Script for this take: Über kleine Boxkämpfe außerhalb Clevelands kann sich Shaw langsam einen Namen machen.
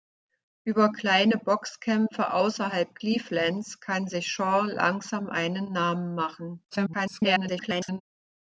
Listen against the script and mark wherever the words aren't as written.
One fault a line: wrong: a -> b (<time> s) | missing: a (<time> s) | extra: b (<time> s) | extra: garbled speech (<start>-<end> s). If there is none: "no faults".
extra: garbled speech (6.7-8.0 s)